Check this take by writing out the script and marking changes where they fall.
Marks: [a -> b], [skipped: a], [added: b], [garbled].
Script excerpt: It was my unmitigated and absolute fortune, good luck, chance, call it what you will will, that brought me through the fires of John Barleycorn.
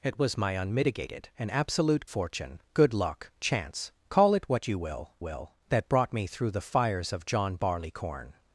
It was my unmitigated and absolute fortune, good luck, chance, call it what you will will, that brought me through the fires of John Barleycorn.